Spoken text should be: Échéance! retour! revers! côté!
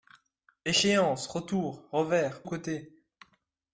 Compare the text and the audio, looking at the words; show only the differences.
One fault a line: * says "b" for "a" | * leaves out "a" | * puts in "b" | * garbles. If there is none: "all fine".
all fine